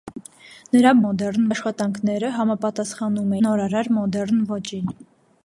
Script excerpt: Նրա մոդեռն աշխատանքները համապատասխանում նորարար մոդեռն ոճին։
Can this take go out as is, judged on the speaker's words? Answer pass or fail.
pass